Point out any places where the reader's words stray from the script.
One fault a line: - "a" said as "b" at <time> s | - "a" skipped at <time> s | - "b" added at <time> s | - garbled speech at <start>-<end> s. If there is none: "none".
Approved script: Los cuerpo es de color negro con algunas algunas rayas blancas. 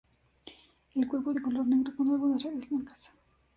- "Los" said as "El" at 0.9 s
- "algunas" skipped at 2.4 s